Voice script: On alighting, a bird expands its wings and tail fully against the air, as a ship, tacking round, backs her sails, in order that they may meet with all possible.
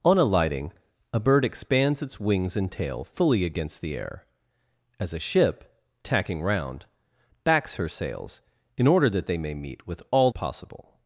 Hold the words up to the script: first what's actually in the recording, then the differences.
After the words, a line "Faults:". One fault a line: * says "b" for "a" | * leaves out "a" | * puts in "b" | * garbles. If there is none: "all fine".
On alighting, a bird expands its wings and tail fully against the air, as a ship, tacking round, backs her sails, in order that they may meet with all possible.
Faults:
all fine